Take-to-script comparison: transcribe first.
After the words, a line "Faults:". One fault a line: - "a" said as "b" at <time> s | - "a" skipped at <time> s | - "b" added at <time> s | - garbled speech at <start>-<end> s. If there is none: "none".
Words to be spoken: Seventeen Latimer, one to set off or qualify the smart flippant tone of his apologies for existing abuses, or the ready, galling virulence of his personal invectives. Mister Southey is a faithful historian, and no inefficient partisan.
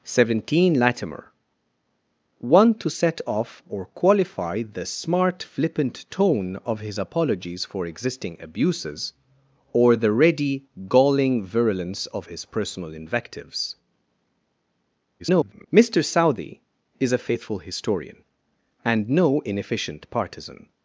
Seventeen Latimer, one to set off or qualify the smart flippant tone of his apologies for existing abuses, or the ready, galling virulence of his personal invectives. [garbled] Mister Southey is a faithful historian, and no inefficient partisan.
Faults:
- garbled speech at 15.2-15.7 s